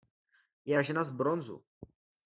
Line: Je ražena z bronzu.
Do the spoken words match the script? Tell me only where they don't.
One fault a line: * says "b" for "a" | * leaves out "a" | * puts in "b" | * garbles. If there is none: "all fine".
all fine